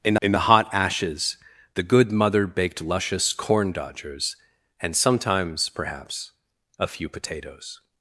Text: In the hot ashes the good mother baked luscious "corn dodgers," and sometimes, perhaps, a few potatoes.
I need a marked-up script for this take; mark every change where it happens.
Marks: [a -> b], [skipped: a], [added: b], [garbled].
In [added: in] the hot ashes the good mother baked luscious "corn dodgers," and sometimes, perhaps, a few potatoes.